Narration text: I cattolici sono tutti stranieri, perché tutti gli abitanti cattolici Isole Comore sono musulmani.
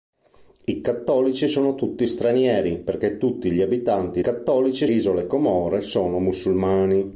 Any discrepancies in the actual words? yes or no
no